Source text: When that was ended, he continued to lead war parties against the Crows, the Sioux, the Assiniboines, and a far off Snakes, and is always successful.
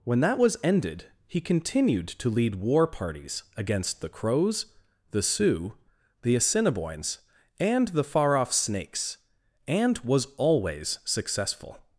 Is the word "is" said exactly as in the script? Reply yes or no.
no